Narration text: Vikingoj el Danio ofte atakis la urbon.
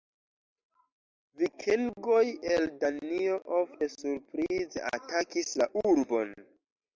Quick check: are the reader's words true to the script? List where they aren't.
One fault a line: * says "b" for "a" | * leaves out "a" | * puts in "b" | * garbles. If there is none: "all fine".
* puts in "surprize"